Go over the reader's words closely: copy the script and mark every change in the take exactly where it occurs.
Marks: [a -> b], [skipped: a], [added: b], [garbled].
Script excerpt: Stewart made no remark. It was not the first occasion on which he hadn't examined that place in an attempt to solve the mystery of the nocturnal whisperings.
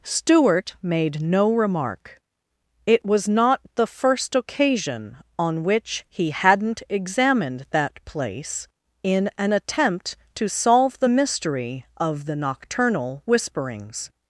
Stewart made no remark. It was not the first occasion on which he hadn't examined that place in an attempt to solve the mystery of the nocturnal whisperings.